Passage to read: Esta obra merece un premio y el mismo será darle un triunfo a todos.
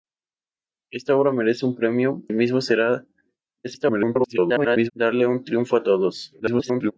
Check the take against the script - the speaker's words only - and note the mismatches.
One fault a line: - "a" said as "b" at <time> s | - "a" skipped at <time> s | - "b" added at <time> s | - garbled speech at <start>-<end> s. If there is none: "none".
- "y" skipped at 2.2 s
- garbled speech at 3.6-4.9 s
- garbled speech at 6.4-6.9 s